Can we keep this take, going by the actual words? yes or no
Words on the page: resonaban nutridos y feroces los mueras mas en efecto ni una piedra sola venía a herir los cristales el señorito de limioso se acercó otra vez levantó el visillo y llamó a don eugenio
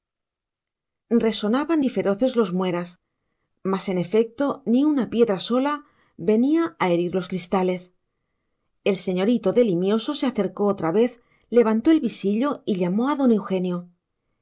no